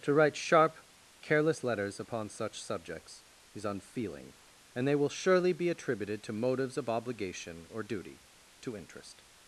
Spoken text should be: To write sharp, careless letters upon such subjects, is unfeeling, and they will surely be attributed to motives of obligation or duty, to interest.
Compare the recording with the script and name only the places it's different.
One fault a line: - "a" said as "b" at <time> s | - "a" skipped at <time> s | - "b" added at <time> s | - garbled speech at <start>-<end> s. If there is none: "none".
none